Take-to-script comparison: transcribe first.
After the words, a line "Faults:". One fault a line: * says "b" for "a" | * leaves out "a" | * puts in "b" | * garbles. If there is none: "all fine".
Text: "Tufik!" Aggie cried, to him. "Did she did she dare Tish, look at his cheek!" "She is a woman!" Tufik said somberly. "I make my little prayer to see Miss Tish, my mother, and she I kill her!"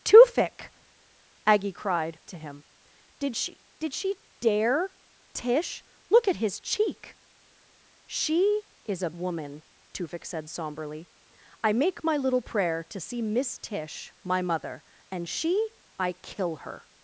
"Tufik!" Aggie cried, to him. "Did she did she dare Tish, look at his cheek!" "She is a woman!" Tufik said somberly. "I make my little prayer to see Miss Tish, my mother, and she I kill her!"
Faults:
all fine